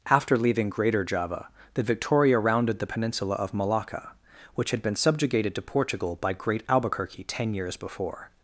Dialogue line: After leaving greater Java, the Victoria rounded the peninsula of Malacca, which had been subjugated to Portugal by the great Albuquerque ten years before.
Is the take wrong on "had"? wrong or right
right